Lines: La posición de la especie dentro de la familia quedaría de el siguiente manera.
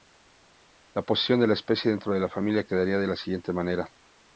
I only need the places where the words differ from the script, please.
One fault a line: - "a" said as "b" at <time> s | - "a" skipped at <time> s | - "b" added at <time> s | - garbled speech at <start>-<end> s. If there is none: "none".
- "el" said as "la" at 3.0 s